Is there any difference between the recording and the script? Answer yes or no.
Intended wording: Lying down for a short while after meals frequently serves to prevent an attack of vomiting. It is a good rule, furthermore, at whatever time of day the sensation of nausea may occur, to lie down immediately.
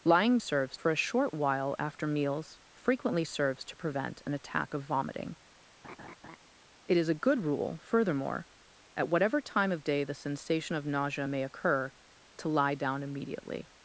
yes